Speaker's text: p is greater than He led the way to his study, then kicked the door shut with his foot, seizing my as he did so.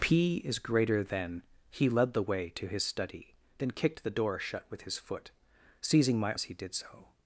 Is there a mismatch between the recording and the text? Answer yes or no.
no